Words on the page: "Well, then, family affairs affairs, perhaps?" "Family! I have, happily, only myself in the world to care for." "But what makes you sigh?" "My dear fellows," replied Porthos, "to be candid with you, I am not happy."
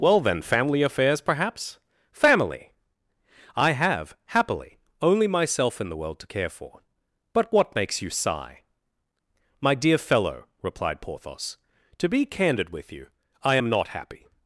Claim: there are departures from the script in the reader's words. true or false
true